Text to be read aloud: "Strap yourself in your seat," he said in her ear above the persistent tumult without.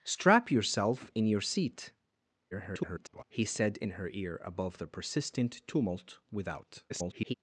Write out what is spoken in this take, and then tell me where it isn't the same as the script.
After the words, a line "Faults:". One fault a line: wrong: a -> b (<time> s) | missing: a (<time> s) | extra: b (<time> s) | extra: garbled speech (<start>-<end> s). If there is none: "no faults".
"Strap yourself in your seat," [garbled] he said in her ear above the persistent tumult without. [garbled]
Faults:
extra: garbled speech (2.5-3.2 s)
extra: garbled speech (6.9-7.3 s)